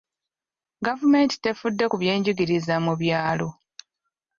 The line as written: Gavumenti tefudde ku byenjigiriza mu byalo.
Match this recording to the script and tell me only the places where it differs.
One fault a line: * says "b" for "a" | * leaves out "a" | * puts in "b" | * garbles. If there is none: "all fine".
all fine